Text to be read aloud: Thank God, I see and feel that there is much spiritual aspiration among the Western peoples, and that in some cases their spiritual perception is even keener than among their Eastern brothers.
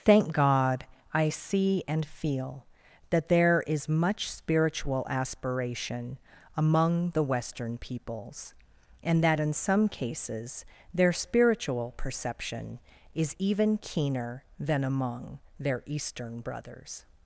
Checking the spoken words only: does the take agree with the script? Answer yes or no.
yes